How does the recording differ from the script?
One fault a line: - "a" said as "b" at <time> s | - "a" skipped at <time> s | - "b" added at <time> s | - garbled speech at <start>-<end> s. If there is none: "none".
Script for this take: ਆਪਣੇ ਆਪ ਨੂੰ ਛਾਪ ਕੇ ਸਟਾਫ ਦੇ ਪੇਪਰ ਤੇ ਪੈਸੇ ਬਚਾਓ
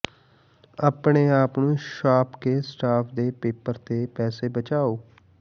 none